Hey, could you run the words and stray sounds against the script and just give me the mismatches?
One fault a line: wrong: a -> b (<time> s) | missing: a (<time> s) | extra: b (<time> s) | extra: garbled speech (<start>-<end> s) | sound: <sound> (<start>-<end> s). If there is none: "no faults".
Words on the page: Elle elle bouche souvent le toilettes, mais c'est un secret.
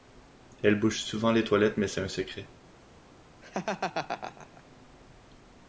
missing: elle (0.8 s)
wrong: le -> les (1.3 s)
sound: laugh (3.4-4.6 s)